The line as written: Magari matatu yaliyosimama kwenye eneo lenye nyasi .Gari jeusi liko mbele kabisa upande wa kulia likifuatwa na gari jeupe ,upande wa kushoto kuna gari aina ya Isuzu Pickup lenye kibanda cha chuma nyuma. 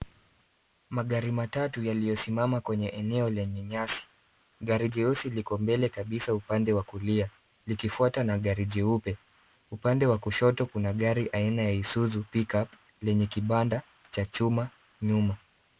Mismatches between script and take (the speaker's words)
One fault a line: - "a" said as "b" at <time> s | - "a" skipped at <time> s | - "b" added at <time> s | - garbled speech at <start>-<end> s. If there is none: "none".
none